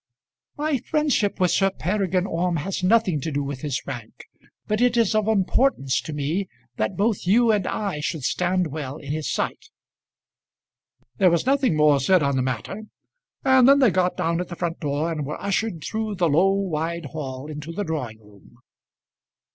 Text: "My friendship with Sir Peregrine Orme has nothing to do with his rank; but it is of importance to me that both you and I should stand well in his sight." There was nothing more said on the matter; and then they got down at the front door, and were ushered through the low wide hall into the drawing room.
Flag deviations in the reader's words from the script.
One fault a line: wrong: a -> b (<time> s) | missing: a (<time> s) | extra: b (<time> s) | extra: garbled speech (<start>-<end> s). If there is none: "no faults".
no faults